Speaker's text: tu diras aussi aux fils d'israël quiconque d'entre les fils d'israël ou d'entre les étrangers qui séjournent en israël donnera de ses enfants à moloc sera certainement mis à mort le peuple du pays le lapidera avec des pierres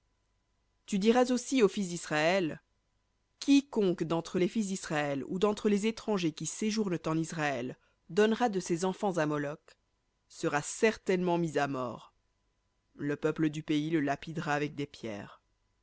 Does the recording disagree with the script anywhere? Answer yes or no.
no